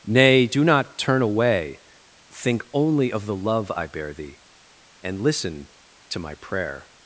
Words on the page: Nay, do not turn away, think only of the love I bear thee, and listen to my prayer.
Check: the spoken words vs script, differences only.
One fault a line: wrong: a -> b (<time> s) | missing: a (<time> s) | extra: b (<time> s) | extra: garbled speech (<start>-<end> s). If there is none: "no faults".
no faults